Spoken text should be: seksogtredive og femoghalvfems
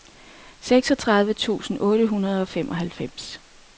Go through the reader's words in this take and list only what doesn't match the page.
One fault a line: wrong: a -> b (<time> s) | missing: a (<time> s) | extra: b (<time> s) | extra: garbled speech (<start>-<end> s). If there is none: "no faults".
extra: tusind otte hundrede (1.3 s)